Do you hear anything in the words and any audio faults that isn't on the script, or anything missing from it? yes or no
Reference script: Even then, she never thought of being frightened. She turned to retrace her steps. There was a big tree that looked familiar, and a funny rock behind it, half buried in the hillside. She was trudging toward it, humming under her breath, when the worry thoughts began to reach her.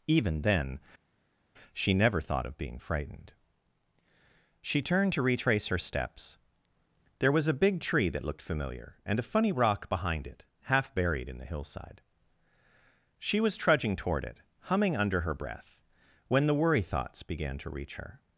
no